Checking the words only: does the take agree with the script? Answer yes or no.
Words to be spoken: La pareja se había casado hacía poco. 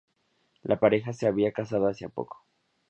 yes